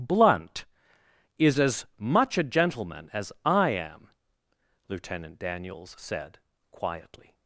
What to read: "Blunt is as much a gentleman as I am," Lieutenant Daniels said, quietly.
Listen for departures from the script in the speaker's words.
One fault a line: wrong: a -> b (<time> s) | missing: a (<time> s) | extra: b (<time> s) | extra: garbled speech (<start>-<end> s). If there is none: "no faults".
no faults